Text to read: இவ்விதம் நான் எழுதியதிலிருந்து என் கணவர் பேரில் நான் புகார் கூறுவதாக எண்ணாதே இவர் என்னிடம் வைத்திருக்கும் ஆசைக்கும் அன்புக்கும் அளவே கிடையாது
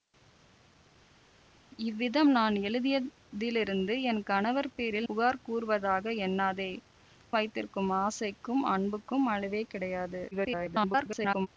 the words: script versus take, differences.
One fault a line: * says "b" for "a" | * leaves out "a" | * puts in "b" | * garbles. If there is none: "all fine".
* leaves out "நான்"
* leaves out "இவர் என்னிடம்"
* garbles